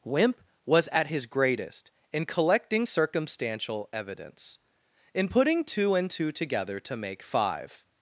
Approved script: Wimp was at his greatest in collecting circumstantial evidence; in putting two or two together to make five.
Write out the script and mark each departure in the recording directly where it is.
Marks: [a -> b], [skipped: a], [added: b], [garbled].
Wimp was at his greatest in collecting circumstantial evidence; in putting two [or -> and] two together to make five.